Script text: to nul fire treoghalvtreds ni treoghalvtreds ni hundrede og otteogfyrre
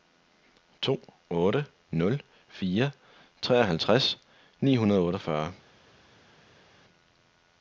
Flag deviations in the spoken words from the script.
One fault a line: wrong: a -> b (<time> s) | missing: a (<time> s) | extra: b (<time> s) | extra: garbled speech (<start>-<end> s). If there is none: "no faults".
extra: otte (1.3 s)
missing: treoghalvtreds ni (4.8 s)